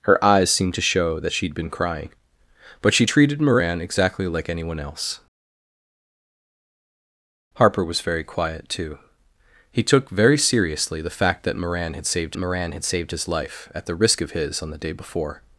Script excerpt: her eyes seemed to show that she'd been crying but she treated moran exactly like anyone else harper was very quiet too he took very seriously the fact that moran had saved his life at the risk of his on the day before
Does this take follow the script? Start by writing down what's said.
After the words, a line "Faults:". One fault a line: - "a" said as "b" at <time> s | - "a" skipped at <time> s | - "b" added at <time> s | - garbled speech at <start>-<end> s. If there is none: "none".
her eyes seemed to show that she'd been crying but she treated moran exactly like anyone else harper was very quiet too he took very seriously the fact that moran had saved moran had saved his life at the risk of his on the day before
Faults:
- "moran had saved" added at 12.4 s